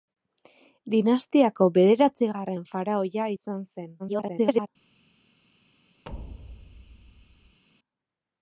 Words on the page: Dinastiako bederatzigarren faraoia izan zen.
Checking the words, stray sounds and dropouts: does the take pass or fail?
fail